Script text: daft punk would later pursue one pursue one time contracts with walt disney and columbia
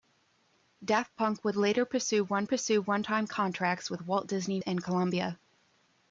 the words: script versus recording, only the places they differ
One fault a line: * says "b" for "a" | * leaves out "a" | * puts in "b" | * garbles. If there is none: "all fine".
all fine